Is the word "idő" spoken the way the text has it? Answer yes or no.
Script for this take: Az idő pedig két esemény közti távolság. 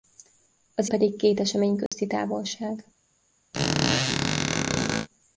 no